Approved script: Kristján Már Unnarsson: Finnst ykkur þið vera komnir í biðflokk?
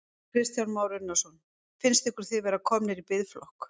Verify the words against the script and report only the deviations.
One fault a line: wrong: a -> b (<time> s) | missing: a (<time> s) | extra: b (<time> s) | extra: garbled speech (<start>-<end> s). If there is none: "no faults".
no faults